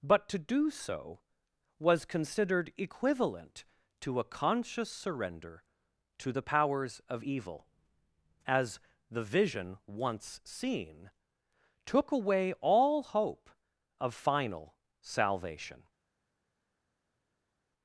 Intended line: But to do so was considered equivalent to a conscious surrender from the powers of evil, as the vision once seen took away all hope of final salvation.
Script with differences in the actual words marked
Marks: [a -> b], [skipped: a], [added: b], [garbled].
But to do so was considered equivalent to a conscious surrender [from -> to] the powers of evil, as the vision once seen took away all hope of final salvation.